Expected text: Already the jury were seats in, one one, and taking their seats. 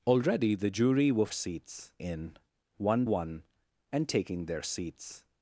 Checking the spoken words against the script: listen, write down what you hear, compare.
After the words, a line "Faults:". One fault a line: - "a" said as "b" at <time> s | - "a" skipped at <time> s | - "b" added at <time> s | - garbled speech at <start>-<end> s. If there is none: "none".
Already the jury were seats in, one one, and taking their seats.
Faults:
none